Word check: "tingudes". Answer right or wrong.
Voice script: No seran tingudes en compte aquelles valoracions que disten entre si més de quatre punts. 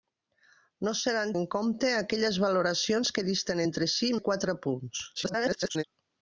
wrong